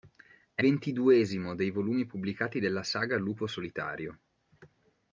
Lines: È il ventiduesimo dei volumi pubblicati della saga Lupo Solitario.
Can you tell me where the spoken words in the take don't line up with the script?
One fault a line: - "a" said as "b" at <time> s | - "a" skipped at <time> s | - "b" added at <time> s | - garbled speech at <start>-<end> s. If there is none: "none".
- "il" skipped at 0.6 s